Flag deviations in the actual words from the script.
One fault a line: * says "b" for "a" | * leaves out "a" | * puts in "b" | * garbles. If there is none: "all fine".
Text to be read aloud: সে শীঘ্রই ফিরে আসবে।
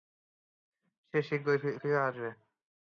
all fine